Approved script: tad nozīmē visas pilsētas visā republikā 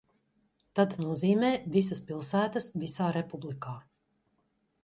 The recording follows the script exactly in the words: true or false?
true